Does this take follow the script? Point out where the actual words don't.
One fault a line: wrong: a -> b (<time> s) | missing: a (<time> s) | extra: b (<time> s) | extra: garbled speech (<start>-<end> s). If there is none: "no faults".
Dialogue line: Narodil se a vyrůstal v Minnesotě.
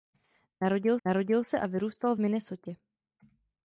extra: narodil (1.1 s)